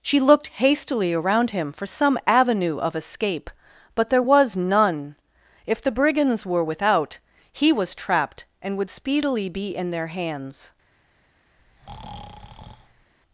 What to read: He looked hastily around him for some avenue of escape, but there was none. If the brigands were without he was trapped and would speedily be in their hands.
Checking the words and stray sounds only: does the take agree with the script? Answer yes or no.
no